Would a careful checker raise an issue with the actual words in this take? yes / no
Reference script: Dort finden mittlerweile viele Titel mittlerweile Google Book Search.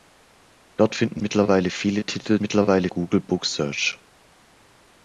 no